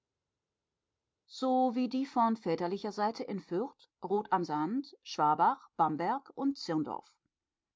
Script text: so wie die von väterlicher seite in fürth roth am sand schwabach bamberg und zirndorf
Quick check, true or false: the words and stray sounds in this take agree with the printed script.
true